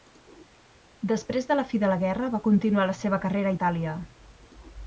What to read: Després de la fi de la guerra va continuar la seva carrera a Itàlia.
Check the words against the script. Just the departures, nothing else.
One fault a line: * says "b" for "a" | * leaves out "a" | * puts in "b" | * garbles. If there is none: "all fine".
all fine